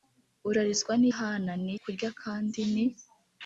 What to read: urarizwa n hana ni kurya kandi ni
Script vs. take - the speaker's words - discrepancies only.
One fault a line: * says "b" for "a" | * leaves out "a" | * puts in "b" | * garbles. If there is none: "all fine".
all fine